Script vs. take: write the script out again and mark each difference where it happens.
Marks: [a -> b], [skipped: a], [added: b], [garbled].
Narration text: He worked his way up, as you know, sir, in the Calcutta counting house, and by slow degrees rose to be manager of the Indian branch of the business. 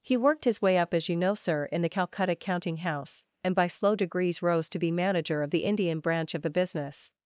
He worked his way up, as you know, sir, in the Calcutta counting house, and by slow degrees rose to be manager of the Indian branch of the business.